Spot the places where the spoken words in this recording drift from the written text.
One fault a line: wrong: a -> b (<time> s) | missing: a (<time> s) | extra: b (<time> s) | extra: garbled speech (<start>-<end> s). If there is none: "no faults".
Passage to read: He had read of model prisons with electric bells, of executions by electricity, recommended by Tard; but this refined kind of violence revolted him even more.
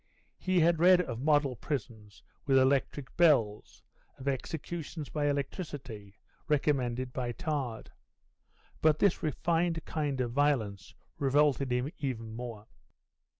no faults